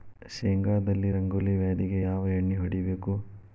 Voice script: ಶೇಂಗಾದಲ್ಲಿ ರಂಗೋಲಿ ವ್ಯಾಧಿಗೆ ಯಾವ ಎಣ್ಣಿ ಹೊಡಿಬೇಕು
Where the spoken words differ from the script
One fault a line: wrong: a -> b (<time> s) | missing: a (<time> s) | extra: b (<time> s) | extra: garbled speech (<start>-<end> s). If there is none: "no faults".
no faults